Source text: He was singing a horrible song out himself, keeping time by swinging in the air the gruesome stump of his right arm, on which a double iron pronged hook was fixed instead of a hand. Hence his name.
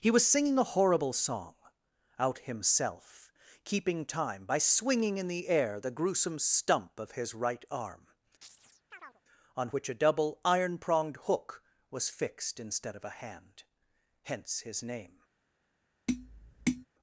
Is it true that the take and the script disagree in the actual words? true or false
false